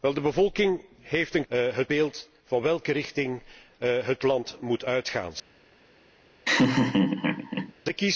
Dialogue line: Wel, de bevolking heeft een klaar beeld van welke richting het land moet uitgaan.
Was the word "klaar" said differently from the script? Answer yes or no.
yes